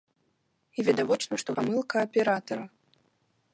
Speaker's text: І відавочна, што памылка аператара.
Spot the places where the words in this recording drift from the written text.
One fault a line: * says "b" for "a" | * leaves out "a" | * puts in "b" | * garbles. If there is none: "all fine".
all fine